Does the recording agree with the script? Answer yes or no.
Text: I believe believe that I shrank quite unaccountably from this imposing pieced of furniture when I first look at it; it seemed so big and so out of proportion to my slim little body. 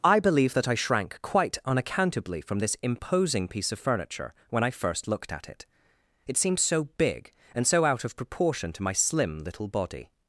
no